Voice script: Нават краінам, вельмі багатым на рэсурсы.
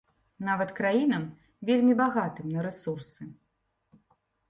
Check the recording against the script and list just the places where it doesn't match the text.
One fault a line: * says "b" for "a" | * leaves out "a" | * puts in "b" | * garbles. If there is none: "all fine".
all fine